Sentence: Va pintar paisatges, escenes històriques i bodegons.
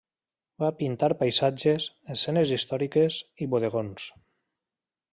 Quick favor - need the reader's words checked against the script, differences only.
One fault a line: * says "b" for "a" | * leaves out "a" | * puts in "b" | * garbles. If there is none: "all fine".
all fine